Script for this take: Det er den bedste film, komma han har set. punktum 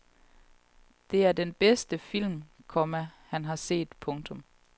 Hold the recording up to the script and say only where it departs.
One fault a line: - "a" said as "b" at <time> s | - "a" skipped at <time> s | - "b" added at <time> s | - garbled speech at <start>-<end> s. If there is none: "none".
none